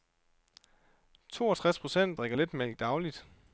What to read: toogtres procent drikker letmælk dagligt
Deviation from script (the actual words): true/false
false